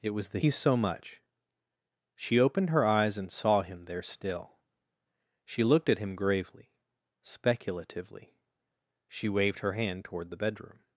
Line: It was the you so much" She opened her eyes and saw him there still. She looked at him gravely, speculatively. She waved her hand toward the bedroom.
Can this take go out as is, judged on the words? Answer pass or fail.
pass